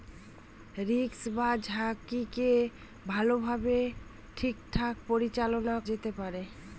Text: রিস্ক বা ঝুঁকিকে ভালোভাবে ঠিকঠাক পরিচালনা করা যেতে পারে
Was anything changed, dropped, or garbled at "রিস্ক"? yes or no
no